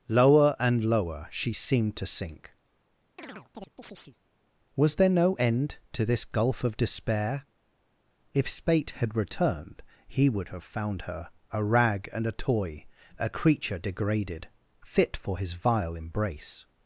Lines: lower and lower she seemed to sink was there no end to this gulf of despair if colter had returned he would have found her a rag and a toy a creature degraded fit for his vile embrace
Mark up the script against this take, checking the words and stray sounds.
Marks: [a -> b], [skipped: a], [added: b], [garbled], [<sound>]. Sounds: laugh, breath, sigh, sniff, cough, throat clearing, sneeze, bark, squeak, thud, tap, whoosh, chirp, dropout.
lower and lower she seemed to sink [chirp] was there no end to this gulf of despair if [colter -> spate] had returned he would have found her a rag and a toy a creature degraded fit for his vile embrace